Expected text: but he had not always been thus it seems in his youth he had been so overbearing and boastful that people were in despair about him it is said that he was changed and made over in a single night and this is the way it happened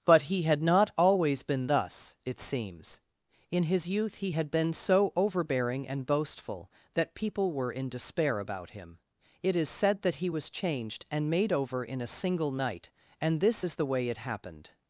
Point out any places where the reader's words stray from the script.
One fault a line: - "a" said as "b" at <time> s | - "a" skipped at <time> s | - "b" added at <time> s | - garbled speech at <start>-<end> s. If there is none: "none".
none